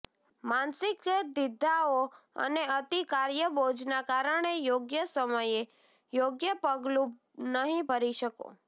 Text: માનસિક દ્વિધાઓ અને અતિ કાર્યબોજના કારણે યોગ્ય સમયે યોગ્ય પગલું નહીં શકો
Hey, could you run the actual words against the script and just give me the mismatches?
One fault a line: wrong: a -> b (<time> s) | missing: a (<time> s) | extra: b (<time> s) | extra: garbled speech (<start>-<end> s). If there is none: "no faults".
extra: ભરી (7.8 s)